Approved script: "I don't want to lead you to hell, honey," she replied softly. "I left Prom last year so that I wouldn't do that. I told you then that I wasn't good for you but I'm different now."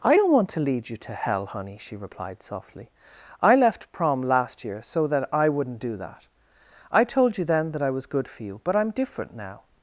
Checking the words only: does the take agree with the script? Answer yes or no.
no